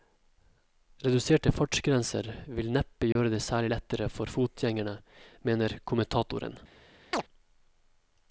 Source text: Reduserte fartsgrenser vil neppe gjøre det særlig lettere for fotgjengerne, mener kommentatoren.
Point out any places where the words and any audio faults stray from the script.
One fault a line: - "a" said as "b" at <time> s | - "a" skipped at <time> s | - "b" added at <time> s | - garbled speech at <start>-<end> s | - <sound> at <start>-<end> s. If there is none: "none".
- dropout at 3.1-3.2 s
- chirp at 7.1-7.2 s